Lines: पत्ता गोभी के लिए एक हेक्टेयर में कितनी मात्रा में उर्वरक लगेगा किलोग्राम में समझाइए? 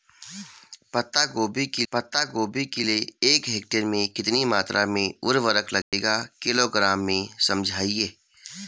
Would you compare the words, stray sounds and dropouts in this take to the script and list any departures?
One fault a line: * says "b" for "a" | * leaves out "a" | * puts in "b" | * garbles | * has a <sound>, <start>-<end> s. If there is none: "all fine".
* puts in "पत्ता गोभी के"
* has a dropout, 5.8-5.9 s